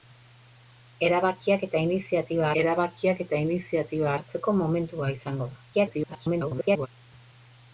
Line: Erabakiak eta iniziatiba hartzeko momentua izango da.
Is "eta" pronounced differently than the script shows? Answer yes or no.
no